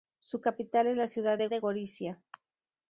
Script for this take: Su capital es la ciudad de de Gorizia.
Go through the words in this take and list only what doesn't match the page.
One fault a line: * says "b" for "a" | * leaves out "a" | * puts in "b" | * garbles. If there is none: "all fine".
all fine